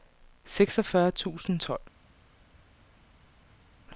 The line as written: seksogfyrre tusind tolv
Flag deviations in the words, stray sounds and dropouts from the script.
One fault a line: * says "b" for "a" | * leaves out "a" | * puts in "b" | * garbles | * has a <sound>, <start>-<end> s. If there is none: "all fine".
all fine